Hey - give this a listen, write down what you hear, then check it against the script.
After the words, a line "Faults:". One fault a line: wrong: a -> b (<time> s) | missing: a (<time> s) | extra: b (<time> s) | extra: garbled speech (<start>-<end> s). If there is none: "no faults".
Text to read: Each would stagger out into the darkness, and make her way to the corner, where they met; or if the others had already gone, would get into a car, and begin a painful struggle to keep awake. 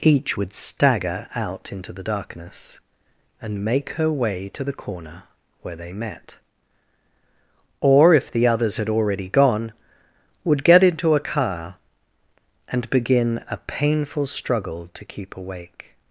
Each would stagger out into the darkness, and make her way to the corner, where they met; or if the others had already gone, would get into a car, and begin a painful struggle to keep awake.
Faults:
no faults